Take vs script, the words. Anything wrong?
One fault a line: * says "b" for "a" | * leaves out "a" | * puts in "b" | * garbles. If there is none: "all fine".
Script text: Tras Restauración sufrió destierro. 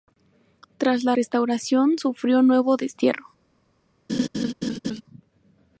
* puts in "la"
* puts in "nuevo"